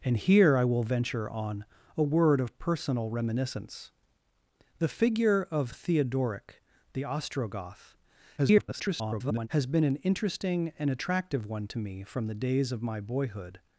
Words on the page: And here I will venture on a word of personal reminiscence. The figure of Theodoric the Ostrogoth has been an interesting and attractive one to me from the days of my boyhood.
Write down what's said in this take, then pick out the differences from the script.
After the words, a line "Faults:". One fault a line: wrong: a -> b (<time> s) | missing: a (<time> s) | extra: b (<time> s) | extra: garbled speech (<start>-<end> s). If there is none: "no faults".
And here I will venture on a word of personal reminiscence. The figure of Theodoric the Ostrogoth [garbled] has been an interesting and attractive one to me from the days of my boyhood.
Faults:
extra: garbled speech (8.4-9.5 s)